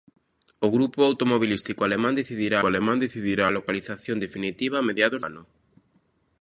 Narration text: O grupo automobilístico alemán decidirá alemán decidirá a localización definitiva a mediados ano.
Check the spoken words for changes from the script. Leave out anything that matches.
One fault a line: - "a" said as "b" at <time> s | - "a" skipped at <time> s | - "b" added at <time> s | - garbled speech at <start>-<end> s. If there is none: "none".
none